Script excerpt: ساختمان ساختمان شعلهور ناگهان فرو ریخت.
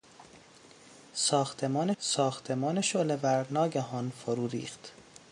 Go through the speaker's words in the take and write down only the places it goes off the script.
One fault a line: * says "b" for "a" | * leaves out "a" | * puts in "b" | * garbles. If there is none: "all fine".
all fine